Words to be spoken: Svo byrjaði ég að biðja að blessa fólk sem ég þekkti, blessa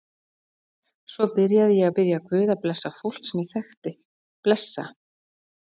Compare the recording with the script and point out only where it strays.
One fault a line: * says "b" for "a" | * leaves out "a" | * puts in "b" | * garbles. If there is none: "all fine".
* puts in "guð"